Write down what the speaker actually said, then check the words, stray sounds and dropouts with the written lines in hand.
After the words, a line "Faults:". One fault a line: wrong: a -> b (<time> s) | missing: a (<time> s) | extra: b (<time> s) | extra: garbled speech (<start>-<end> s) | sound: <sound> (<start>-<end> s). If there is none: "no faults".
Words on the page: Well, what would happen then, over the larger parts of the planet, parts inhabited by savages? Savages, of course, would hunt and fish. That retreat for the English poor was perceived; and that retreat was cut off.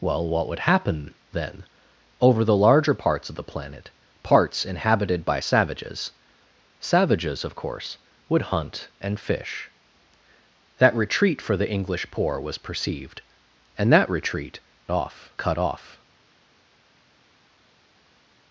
Well, what would happen then, over the larger parts of the planet, parts inhabited by savages? Savages, of course, would hunt and fish. That retreat for the English poor was perceived; and that retreat off cut off.
Faults:
wrong: was -> off (14.9 s)